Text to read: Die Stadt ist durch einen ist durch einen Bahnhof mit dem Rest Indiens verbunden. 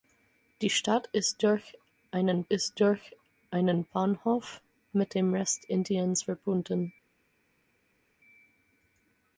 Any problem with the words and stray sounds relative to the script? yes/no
no